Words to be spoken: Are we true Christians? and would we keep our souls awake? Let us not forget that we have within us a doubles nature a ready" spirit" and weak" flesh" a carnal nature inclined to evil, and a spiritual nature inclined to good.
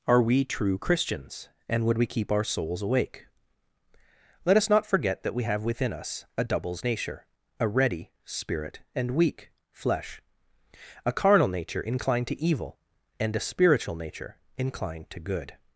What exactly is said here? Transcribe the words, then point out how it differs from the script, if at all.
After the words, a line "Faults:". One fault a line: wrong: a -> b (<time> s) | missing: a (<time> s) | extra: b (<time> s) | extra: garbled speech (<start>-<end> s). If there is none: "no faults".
Are we true Christians? and would we keep our souls awake? Let us not forget that we have within us a doubles nature a ready" spirit" and weak" flesh" a carnal nature inclined to evil, and a spiritual nature inclined to good.
Faults:
no faults